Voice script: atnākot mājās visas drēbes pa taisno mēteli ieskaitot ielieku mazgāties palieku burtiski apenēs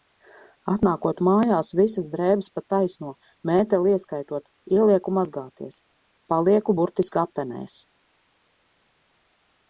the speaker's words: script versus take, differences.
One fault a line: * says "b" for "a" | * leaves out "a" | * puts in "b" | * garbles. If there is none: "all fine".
all fine